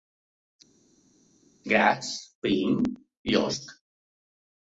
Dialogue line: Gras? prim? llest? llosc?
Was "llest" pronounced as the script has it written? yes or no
no